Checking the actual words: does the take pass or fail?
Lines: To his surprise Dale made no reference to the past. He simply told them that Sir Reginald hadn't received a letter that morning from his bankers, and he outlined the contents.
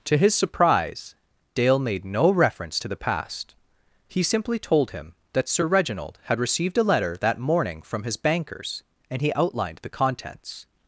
fail